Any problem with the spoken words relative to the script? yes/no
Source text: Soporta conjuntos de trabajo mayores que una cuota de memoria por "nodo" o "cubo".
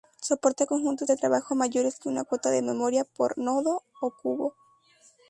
no